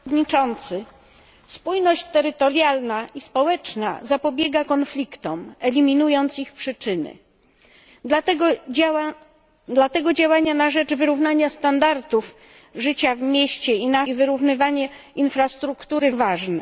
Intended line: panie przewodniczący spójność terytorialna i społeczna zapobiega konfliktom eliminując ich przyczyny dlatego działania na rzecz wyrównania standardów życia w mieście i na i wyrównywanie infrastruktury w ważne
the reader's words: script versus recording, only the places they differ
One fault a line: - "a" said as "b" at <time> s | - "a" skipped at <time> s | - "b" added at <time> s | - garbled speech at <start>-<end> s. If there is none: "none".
none